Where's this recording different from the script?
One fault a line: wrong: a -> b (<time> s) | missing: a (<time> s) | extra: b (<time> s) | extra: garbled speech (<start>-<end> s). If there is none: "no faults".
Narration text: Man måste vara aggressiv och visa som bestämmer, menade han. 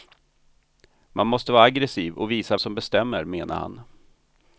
no faults